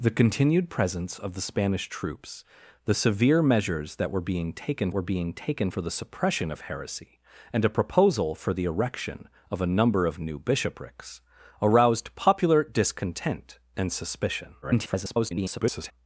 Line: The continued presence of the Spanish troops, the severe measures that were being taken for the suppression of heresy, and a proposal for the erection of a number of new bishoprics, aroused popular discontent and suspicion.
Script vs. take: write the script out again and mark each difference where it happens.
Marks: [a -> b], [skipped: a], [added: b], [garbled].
The continued presence of the Spanish troops, the severe measures that were being taken [added: were being taken] for the suppression of heresy, and a proposal for the erection of a number of new bishoprics, aroused popular discontent and suspicion. [garbled]